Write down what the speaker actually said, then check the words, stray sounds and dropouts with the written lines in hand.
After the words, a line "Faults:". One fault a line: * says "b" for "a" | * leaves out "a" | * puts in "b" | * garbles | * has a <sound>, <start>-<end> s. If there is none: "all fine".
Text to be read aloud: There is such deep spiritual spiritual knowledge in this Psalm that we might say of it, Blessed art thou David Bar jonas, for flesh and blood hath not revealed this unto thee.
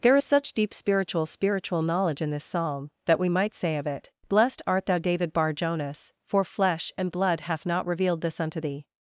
There is such deep spiritual spiritual knowledge in this Psalm that we might say of it, Blessed art thou David Bar jonas, for flesh and blood hath not revealed this unto thee.
Faults:
all fine